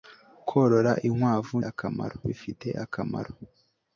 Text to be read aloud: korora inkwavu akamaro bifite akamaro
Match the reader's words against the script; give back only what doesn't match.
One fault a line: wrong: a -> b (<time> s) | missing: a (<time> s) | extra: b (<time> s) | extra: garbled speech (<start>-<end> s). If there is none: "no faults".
no faults